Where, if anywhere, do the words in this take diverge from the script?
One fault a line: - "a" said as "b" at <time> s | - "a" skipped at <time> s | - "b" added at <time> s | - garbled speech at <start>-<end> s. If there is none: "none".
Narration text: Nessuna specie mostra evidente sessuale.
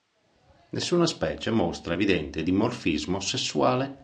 - "dimorfismo" added at 2.4 s